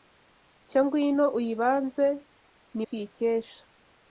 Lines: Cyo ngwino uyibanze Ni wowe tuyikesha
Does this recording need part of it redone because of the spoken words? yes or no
yes